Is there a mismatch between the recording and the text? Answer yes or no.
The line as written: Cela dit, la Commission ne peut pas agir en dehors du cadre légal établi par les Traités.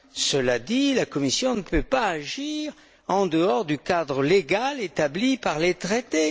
no